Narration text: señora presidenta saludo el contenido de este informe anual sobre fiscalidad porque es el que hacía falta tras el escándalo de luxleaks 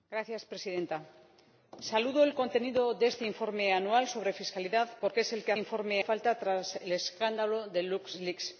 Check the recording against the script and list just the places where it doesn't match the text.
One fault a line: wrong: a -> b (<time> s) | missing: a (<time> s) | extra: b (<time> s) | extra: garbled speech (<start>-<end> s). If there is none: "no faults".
wrong: hacía -> informe (5.6 s)